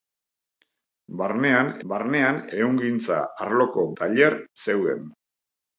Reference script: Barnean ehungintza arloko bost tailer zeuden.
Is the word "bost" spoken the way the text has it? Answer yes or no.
no